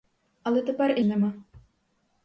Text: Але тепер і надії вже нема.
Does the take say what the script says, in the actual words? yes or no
no